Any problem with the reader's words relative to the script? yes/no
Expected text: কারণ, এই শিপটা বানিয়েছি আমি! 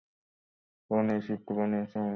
no